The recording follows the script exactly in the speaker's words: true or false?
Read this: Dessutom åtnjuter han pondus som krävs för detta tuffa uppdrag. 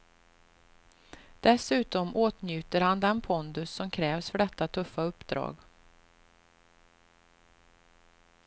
false